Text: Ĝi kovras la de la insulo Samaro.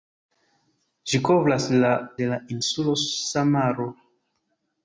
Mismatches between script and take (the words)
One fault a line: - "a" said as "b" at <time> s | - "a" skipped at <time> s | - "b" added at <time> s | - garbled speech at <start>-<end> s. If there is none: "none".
none